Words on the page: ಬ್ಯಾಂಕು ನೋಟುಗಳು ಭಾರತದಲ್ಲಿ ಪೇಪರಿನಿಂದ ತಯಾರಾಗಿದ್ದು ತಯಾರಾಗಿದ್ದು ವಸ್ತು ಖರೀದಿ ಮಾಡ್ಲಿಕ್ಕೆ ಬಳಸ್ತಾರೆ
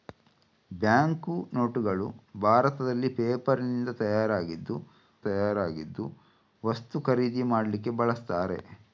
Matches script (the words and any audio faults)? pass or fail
pass